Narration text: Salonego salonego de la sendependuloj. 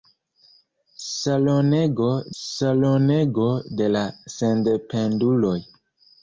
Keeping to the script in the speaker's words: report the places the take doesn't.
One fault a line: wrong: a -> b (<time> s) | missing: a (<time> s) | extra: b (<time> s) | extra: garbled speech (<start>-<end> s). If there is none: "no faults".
no faults